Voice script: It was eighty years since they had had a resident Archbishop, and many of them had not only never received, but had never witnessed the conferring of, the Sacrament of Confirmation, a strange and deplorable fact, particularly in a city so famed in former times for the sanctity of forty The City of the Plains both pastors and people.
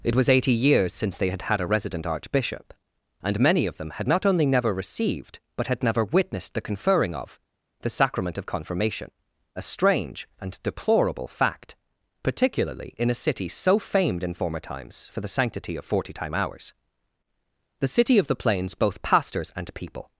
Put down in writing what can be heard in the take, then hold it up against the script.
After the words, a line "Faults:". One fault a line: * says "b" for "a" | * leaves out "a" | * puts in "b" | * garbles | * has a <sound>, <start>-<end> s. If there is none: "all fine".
It was eighty years since they had had a resident Archbishop, and many of them had not only never received, but had never witnessed the conferring of, the Sacrament of Confirmation, a strange and deplorable fact, particularly in a city so famed in former times for the sanctity of forty time hours The City of the Plains both pastors and people.
Faults:
* puts in "time hours"